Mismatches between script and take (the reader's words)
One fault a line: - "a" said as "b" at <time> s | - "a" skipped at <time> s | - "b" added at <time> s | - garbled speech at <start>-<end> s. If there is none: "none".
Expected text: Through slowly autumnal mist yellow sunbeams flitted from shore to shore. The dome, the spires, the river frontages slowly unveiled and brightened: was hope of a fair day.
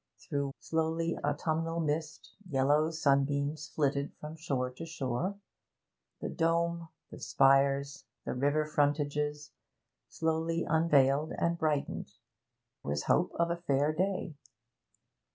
none